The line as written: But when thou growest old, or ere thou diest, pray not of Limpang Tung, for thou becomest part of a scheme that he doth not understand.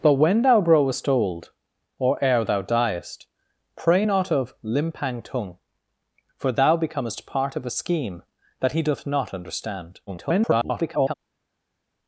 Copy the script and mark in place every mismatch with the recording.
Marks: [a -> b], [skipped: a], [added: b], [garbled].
But when thou growest old, or ere thou diest, pray not of Limpang Tung, for thou becomest part of a scheme that he doth not understand. [garbled]